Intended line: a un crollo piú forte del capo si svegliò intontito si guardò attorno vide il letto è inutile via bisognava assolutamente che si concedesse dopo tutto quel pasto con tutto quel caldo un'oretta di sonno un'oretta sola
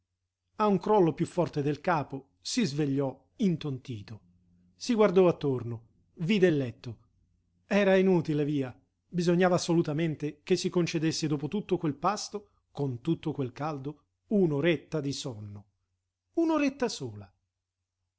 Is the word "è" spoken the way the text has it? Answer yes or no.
no